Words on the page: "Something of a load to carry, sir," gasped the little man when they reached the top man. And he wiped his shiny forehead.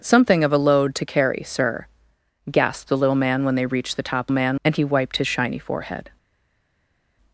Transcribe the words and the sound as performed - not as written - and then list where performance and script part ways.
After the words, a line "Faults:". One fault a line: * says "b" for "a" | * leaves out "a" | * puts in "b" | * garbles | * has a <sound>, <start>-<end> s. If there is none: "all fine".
"Something of a load to carry, sir," gasped the little man when they reached the top man. And he wiped his shiny forehead.
Faults:
all fine